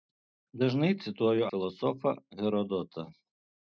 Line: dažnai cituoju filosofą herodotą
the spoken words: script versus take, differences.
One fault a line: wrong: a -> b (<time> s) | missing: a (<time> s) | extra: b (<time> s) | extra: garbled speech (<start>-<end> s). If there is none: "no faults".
no faults